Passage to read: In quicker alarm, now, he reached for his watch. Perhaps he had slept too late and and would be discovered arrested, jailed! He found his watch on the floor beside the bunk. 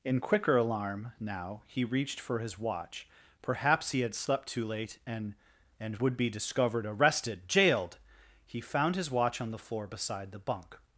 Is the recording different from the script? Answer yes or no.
no